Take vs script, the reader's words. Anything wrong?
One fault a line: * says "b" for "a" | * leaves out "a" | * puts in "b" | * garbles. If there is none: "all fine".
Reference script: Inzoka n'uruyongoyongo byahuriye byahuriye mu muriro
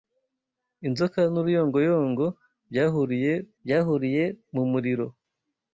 all fine